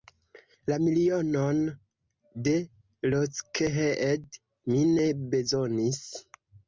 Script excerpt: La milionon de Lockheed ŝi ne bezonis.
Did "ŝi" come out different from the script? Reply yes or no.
yes